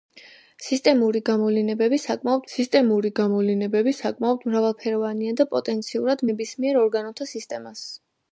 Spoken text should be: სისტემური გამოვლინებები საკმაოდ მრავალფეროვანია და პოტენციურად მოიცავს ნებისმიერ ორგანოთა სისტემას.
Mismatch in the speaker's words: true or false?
true